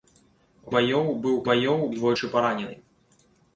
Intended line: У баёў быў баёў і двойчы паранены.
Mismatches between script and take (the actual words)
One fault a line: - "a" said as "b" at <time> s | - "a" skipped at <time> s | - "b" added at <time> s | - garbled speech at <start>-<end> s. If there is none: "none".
none